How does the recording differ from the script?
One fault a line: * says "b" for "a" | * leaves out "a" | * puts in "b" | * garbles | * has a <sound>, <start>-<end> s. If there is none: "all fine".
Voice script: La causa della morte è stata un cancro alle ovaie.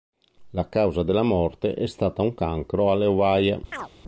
* has a chirp, 3.7-3.9 s